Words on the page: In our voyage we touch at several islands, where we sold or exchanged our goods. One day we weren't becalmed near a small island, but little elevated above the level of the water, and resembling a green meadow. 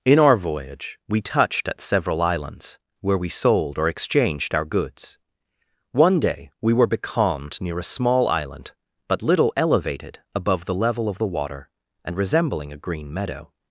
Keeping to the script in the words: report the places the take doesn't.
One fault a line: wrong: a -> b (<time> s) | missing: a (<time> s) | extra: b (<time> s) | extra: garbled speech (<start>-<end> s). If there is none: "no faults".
wrong: touch -> touched (1.2 s)
wrong: weren't -> were (6.7 s)